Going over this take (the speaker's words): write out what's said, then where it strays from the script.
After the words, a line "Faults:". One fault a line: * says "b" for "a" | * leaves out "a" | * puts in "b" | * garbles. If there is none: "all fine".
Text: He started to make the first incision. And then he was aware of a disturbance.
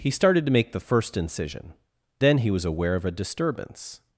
He started to make the first incision. Then he was aware of a disturbance.
Faults:
* leaves out "And"